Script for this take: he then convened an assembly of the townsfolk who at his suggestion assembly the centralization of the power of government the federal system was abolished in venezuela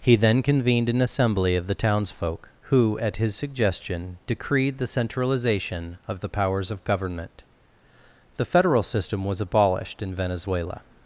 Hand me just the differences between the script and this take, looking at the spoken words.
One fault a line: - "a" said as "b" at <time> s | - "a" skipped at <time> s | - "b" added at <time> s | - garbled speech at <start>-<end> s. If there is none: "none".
- "assembly" said as "decreed" at 4.2 s
- "power" said as "powers" at 6.3 s